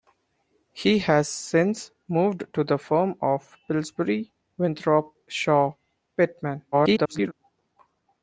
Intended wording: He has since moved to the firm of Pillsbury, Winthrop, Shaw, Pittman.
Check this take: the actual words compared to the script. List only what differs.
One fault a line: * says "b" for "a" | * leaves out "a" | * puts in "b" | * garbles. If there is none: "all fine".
* garbles